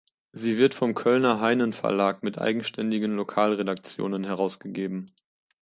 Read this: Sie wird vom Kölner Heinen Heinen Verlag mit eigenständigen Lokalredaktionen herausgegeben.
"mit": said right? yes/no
yes